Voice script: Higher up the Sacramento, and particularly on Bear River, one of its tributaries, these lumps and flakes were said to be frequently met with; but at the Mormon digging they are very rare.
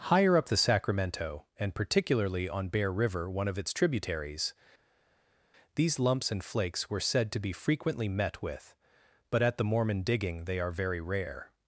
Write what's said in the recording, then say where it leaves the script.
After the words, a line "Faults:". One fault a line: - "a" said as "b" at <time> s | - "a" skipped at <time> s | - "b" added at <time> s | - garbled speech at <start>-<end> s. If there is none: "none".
Higher up the Sacramento, and particularly on Bear River, one of its tributaries, these lumps and flakes were said to be frequently met with; but at the Mormon digging they are very rare.
Faults:
none